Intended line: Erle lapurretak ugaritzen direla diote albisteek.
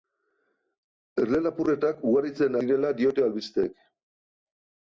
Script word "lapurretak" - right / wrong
right